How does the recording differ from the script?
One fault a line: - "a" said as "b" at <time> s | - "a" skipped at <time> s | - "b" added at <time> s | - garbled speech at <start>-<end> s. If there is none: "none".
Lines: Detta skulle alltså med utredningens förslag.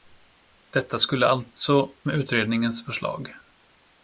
none